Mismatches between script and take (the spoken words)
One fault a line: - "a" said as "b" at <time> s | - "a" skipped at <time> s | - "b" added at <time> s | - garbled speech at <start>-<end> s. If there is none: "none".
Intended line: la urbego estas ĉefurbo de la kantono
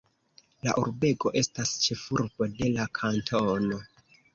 none